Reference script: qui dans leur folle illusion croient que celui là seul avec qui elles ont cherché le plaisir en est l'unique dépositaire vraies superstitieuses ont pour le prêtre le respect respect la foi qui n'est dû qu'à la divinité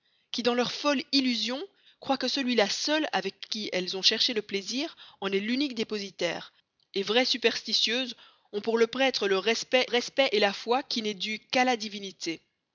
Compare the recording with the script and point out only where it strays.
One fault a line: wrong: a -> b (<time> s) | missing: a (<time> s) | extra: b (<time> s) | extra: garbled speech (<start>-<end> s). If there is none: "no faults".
no faults